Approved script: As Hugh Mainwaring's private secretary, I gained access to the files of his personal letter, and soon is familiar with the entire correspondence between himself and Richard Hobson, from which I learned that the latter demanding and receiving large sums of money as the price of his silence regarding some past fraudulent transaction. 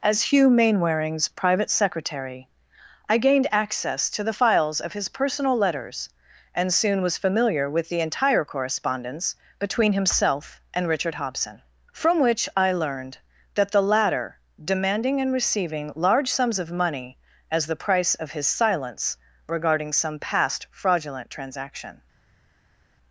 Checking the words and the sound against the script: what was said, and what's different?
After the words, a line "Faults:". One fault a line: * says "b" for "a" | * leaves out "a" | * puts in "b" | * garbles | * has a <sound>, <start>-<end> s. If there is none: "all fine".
As Hugh Mainwaring's private secretary, I gained access to the files of his personal letters, and soon was familiar with the entire correspondence between himself and Richard Hobson, from which I learned that the latter demanding and receiving large sums of money as the price of his silence regarding some past fraudulent transaction.
Faults:
* says "letters" for "letter"
* says "was" for "is"